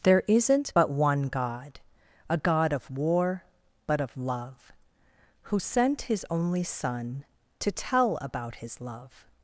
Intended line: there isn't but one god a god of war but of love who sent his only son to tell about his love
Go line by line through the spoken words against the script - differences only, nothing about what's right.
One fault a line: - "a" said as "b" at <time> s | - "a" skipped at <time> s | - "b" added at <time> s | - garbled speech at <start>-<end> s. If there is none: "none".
none